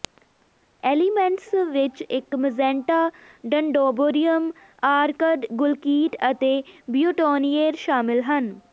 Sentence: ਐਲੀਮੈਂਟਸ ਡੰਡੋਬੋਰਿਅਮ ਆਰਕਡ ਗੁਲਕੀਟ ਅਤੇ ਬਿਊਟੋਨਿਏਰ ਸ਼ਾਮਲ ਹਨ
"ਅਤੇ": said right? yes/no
yes